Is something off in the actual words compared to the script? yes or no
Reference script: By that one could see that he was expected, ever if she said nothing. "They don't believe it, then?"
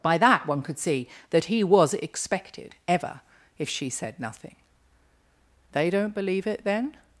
no